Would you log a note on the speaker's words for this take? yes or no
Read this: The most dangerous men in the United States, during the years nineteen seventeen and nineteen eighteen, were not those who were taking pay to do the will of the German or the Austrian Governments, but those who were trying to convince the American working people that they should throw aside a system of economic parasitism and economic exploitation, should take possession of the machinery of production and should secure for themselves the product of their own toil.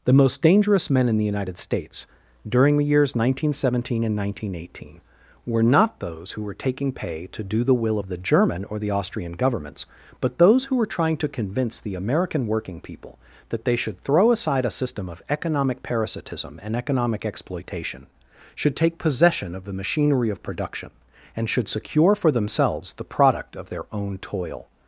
no